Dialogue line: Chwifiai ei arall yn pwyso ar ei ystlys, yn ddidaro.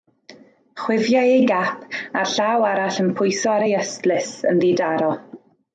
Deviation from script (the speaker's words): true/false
true